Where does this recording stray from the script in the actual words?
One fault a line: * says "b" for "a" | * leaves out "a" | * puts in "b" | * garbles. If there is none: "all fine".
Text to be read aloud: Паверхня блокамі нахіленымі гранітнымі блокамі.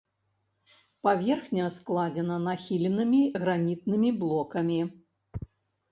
* says "складзена" for "блокамі"